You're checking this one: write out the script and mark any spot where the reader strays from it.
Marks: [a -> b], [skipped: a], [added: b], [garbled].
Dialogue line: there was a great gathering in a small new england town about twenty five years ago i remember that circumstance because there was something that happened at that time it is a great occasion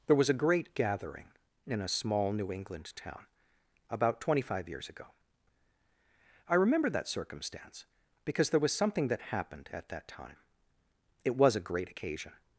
there was a great gathering in a small new england town about twenty five years ago i remember that circumstance because there was something that happened at that time it [is -> was] a great occasion